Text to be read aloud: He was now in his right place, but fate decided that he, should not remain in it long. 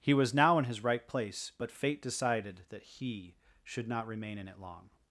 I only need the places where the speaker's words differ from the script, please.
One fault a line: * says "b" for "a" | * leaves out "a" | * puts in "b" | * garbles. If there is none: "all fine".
all fine